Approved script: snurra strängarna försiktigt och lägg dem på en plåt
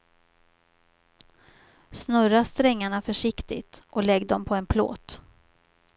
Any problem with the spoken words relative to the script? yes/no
no